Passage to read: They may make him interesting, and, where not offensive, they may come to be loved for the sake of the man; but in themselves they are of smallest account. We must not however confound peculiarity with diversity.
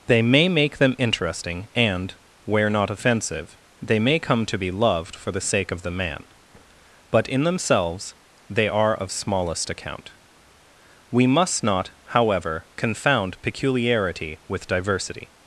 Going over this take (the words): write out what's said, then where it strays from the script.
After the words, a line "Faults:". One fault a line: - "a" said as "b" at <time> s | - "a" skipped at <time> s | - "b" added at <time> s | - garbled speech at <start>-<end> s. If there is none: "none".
They may make them interesting, and, where not offensive, they may come to be loved for the sake of the man; but in themselves they are of smallest account. We must not however confound peculiarity with diversity.
Faults:
- "him" said as "them" at 0.8 s